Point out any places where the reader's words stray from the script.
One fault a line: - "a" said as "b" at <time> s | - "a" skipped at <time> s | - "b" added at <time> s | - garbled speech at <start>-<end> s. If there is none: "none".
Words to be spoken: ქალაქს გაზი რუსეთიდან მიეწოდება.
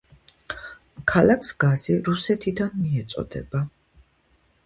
none